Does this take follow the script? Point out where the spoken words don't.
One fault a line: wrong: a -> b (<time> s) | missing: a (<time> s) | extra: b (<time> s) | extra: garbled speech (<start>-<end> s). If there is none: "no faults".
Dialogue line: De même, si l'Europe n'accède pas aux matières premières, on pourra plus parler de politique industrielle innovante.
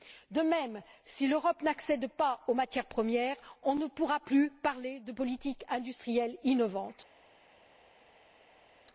extra: ne (3.8 s)